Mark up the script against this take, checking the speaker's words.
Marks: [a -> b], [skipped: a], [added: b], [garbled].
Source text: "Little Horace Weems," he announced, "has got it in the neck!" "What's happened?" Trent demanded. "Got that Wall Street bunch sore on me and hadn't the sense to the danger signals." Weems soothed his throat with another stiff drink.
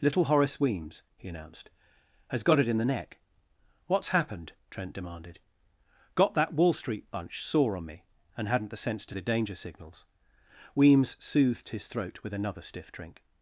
"Little Horace Weems," he announced, "has got it in the neck!" "What's happened?" Trent demanded. "Got that Wall Street bunch sore on me and hadn't the sense to the danger signals." Weems soothed his throat with another stiff drink.